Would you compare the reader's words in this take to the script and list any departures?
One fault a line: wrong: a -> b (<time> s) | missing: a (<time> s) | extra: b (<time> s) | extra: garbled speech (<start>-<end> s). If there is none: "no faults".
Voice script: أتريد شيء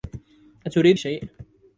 no faults